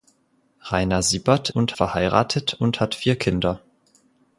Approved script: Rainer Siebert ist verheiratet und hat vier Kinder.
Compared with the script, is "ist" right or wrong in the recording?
wrong